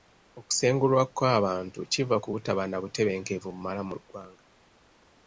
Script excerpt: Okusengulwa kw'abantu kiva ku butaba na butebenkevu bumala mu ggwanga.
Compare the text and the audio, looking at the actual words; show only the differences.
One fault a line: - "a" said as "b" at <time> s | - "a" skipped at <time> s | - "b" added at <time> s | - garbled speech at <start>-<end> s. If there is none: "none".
none